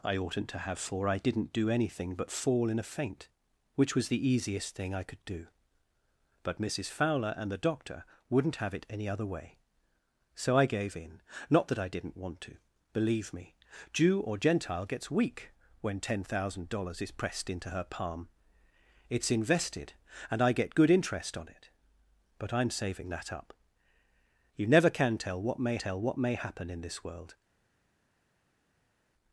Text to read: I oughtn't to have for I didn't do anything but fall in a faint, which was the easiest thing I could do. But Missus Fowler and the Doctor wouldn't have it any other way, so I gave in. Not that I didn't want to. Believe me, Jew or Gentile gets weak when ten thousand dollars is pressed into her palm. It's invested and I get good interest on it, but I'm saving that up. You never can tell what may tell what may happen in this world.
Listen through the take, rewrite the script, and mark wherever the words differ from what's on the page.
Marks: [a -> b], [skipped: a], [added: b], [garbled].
I oughtn't to have for I didn't do anything but fall in a faint, which was the easiest thing I could do. But Missus Fowler and the Doctor wouldn't have it any other way, so I gave in. Not that I didn't want to. Believe me, Jew or Gentile gets weak when ten thousand dollars is pressed into her palm. It's invested and I get good interest on it, but I'm saving that up. You never can tell what may tell what may happen in this world.